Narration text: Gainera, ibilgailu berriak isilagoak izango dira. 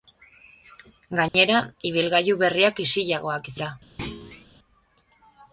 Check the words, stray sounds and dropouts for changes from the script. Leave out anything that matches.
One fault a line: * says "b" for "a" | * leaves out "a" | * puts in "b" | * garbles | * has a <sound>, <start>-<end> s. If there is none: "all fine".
* has a dropout, 1.3-1.3 s
* leaves out "izango"
* has a thud, 4.0-4.5 s